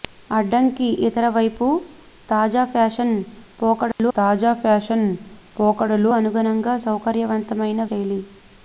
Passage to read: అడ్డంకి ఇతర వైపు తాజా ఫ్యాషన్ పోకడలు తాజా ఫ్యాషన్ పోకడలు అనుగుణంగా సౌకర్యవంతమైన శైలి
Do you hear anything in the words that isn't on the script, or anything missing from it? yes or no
no